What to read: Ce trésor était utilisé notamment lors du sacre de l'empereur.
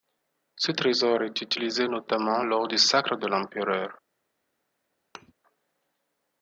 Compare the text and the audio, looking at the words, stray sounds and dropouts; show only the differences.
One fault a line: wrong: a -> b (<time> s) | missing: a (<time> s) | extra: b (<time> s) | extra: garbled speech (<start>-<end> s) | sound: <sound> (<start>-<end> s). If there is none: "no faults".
wrong: était -> est (1.2 s)
sound: thud (5.1-5.3 s)